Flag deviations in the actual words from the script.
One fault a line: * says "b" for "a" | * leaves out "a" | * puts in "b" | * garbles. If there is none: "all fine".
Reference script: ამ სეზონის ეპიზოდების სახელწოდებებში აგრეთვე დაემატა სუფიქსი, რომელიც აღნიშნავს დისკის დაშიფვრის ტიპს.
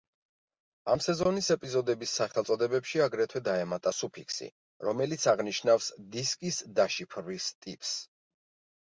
all fine